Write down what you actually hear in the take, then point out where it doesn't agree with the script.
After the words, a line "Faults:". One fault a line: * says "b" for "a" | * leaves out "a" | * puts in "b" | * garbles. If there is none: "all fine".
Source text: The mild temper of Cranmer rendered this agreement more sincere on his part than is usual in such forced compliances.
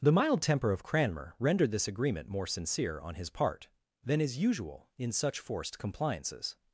The mild temper of Cranmer rendered this agreement more sincere on his part than is usual in such forced compliances.
Faults:
all fine